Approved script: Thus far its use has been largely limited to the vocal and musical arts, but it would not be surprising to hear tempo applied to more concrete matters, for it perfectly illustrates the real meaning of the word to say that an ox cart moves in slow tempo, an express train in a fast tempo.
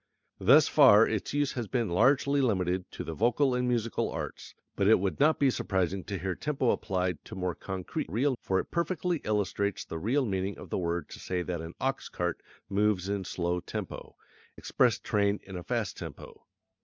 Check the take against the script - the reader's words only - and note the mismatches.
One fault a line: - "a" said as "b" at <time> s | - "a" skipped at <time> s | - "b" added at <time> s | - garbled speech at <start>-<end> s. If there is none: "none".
- "matters" said as "real" at 8.1 s
- "an" skipped at 14.2 s